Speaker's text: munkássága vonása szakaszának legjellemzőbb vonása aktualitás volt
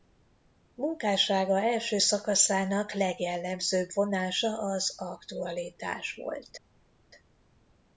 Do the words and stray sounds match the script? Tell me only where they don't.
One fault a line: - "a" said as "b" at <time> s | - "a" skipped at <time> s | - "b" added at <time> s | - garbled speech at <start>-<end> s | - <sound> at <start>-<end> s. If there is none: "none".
- "vonása" said as "első" at 1.6 s
- "az" added at 4.6 s